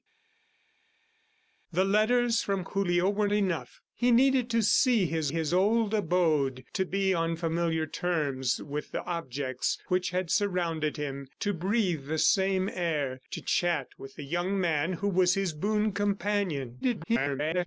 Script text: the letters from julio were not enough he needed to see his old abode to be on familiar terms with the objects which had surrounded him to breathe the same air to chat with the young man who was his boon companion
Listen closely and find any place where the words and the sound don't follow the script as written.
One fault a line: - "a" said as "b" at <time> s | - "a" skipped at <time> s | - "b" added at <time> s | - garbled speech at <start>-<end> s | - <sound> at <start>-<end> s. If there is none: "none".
- "not" skipped at 3.3 s
- "his" added at 5.3 s
- garbled speech at 16.8-17.7 s